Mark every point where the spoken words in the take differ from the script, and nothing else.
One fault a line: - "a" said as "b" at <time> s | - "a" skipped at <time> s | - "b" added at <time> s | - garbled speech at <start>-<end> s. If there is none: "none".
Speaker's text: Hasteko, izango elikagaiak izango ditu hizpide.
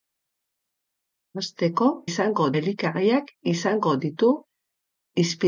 none